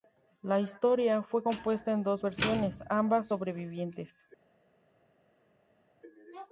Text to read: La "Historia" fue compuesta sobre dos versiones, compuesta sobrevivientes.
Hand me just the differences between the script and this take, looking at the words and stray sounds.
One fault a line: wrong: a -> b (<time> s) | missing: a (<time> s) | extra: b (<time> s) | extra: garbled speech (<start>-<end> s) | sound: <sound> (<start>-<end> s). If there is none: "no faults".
wrong: sobre -> en (1.9 s)
wrong: compuesta -> ambas (2.9 s)